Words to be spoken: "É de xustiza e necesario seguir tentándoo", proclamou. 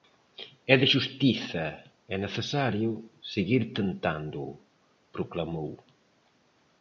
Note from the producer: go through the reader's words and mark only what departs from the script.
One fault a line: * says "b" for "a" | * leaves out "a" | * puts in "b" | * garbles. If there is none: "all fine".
all fine